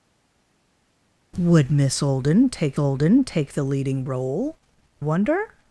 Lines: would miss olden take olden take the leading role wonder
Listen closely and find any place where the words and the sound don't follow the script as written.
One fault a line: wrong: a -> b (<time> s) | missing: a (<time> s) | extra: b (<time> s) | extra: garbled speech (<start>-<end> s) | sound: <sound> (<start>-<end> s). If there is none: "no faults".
no faults